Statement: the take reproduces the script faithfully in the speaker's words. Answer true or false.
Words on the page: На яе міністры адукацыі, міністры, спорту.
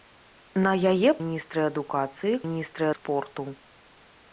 true